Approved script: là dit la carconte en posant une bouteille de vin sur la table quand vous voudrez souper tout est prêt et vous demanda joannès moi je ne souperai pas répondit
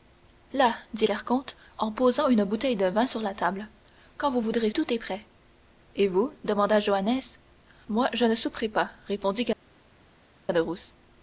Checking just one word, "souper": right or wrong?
wrong